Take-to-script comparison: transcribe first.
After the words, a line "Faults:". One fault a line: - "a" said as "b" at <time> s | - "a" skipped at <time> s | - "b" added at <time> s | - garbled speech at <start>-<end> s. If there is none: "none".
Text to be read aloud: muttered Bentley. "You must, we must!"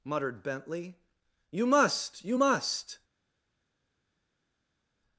muttered Bentley. "You must, you must!"
Faults:
- "we" said as "you" at 2.2 s